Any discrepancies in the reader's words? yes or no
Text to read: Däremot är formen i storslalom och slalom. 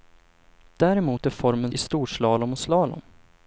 no